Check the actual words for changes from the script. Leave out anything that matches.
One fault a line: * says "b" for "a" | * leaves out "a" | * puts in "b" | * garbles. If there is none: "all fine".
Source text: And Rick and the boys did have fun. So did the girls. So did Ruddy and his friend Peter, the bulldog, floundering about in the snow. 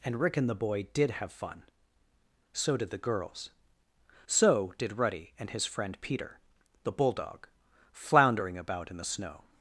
* says "boy" for "boys"